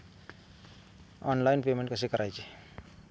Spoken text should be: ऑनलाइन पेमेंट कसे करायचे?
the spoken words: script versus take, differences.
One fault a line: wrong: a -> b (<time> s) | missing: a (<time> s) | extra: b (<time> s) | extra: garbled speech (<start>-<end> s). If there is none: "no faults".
no faults